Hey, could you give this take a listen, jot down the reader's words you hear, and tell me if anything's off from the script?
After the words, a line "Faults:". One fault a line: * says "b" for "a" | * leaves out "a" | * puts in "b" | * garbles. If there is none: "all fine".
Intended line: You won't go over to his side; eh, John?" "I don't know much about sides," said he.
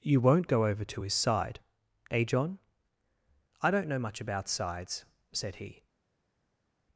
You won't go over to his side; eh, John?" "I don't know much about sides," said he.
Faults:
all fine